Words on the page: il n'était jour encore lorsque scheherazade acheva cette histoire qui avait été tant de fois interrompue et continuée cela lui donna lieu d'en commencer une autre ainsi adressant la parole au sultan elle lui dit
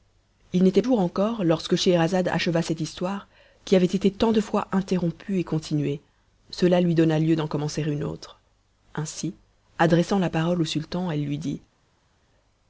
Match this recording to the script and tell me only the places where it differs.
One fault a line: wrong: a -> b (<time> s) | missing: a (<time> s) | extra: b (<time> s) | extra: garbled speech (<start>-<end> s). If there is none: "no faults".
no faults